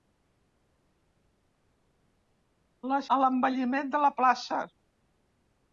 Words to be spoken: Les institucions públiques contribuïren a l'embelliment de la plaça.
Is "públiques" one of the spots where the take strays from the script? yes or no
yes